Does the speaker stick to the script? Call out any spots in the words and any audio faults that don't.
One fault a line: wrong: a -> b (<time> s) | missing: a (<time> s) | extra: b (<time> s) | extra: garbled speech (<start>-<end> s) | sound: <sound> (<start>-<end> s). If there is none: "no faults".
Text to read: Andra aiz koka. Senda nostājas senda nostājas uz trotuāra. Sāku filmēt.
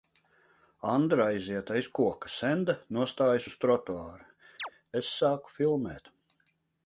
extra: aiziet (1.3 s)
missing: senda nostājas (3.5 s)
sound: chirp (4.6-4.7 s)
extra: Es (5.0 s)